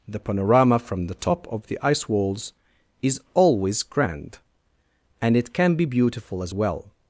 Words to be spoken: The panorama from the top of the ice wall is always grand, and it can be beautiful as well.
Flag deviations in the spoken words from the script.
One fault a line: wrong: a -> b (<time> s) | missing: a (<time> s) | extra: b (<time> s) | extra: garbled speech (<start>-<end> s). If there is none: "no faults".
wrong: wall -> walls (2.1 s)